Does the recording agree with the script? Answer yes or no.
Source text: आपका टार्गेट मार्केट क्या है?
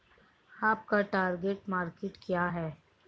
yes